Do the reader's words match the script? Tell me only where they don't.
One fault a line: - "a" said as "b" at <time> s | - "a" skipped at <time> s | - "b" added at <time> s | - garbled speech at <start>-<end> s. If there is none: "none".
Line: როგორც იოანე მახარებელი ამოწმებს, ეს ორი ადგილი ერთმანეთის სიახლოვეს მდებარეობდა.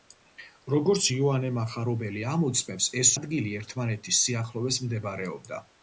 - "ორი" skipped at 3.1 s